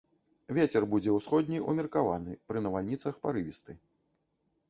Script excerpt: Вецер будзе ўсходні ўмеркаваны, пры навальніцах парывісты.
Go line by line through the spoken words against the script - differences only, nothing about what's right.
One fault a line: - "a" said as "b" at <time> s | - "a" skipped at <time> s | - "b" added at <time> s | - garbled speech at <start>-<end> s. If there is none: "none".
none